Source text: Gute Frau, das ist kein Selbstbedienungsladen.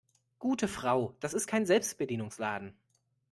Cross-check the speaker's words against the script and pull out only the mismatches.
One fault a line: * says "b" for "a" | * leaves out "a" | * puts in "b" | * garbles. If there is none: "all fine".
all fine